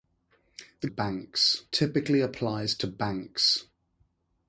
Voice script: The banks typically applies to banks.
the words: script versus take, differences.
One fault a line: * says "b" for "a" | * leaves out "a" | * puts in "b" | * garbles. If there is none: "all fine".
all fine